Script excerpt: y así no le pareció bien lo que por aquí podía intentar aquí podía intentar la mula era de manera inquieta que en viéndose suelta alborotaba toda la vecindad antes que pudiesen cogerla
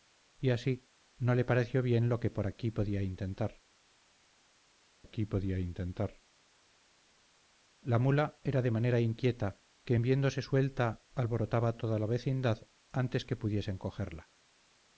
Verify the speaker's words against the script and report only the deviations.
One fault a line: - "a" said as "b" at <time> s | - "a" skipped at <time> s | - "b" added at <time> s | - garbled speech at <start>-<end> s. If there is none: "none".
none